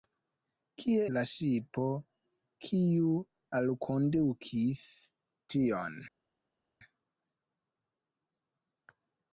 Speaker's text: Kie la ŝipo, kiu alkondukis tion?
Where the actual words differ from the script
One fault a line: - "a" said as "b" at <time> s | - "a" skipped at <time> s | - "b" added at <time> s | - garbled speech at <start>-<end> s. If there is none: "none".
none